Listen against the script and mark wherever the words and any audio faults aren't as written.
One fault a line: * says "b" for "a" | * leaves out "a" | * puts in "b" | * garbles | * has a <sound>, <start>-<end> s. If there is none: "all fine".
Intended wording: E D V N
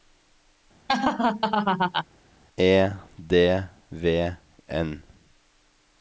* has a laugh, 0.9-2.1 s